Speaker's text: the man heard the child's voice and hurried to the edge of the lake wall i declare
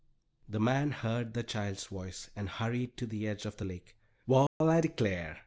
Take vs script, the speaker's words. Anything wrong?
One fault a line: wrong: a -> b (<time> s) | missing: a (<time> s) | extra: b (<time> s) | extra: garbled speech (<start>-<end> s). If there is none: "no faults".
no faults